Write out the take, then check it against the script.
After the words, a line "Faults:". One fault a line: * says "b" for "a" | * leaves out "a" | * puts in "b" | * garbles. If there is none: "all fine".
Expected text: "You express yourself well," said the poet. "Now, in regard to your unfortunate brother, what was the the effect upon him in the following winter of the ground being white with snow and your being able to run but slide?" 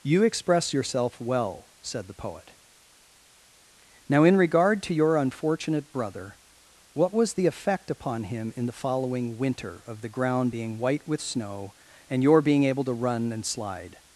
"You express yourself well," said the poet. "Now, in regard to your unfortunate brother, what was the effect upon him in the following winter of the ground being white with snow and your being able to run and slide?"
Faults:
* leaves out "the"
* says "and" for "but"